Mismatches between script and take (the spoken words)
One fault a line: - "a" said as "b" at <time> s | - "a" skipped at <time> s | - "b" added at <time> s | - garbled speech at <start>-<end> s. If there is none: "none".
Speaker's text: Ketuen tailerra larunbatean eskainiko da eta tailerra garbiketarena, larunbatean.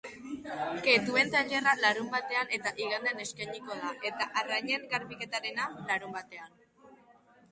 - "eta igandean" added at 2.6 s
- "tailerra" said as "arrainen" at 4.4 s